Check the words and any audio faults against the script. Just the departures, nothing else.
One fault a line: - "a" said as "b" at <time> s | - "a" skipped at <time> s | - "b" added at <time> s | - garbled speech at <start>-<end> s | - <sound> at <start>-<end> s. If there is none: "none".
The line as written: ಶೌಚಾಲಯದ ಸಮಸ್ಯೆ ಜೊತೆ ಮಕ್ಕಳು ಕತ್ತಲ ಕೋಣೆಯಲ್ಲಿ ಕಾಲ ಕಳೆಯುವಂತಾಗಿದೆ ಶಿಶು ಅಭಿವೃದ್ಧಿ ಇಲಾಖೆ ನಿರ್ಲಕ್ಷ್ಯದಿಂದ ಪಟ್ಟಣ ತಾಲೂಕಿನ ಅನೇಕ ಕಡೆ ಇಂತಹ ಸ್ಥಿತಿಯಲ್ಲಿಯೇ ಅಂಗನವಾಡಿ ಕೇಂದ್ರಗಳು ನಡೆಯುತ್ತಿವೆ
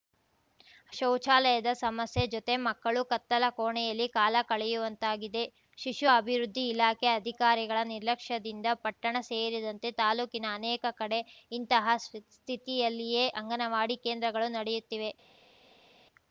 - "ಅಧಿಕಾರಿಗಳ" added at 7.1 s
- "ಸೇರಿದಂತೆ" added at 9.3 s